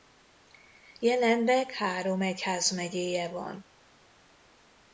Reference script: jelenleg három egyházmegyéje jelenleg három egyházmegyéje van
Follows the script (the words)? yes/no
no